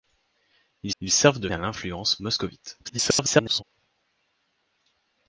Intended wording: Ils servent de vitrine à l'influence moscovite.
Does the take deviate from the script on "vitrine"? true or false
true